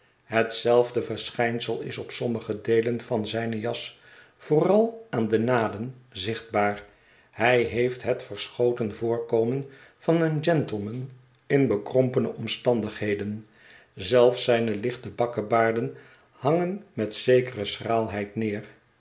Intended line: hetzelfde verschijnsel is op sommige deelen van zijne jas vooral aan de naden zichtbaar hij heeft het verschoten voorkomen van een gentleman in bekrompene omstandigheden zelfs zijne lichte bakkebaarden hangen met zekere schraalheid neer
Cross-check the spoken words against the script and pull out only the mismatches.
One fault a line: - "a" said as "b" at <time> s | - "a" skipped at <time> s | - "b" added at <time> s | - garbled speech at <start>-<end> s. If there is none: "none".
none